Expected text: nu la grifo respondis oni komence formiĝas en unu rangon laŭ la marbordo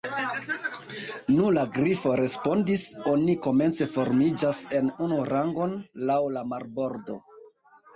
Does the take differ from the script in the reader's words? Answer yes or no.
no